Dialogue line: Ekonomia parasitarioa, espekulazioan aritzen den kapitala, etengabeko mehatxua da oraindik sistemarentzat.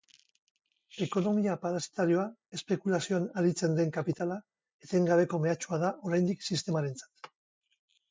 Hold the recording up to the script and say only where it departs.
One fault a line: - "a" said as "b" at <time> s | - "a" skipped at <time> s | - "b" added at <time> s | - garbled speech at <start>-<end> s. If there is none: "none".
none